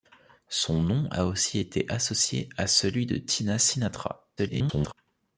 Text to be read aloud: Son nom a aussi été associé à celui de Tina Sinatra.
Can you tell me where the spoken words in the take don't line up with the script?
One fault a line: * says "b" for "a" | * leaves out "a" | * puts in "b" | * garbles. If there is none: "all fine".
* garbles